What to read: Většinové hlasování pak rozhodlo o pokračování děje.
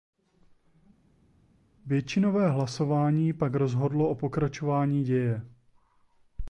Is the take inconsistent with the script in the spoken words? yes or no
no